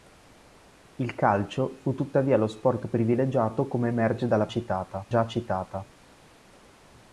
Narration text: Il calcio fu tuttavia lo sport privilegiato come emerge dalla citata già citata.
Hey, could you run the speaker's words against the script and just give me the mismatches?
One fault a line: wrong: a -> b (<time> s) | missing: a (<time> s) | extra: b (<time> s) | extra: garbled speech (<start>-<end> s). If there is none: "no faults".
no faults